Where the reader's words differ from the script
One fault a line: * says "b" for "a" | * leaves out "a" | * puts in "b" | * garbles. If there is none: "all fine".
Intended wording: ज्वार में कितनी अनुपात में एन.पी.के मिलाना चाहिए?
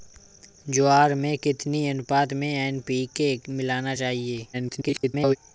* garbles